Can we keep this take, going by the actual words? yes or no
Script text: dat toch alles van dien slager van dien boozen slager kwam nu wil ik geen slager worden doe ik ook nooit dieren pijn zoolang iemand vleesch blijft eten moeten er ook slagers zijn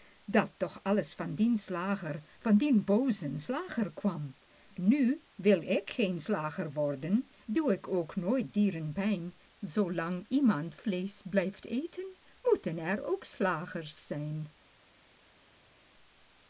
yes